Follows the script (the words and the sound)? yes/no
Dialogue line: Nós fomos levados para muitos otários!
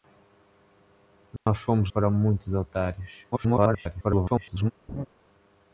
no